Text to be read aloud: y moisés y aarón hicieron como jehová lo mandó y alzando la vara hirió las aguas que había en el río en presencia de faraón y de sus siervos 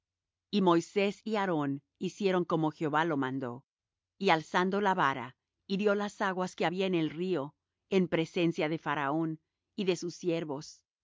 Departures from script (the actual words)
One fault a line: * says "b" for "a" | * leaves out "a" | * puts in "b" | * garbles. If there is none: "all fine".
all fine